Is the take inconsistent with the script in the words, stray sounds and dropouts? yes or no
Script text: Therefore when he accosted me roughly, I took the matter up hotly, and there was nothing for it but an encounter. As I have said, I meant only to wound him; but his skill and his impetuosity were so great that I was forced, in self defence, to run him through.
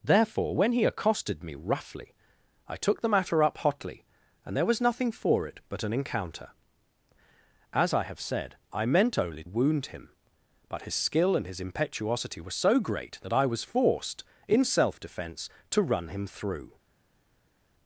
yes